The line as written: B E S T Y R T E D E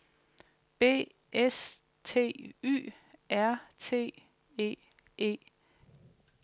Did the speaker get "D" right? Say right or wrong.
wrong